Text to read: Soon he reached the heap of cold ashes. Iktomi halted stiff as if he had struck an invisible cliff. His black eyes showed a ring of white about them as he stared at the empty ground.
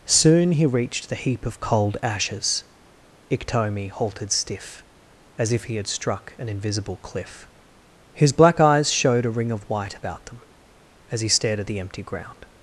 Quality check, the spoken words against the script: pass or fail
pass